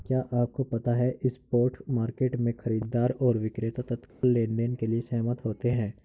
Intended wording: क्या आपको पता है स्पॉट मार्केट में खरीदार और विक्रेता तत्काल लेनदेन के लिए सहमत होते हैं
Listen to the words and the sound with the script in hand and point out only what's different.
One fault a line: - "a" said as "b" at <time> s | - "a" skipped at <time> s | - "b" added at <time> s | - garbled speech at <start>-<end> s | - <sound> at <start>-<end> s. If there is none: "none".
- dropout at 4.1-4.2 s